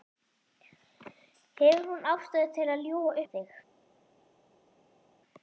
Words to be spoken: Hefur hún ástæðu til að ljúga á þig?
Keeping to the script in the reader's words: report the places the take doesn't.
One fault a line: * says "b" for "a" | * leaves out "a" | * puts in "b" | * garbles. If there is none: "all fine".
all fine